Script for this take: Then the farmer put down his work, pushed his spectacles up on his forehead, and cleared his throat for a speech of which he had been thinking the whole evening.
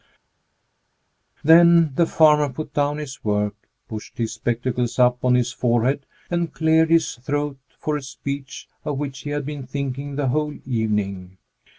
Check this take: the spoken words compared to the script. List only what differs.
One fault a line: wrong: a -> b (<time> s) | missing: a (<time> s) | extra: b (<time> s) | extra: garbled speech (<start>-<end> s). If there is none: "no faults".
no faults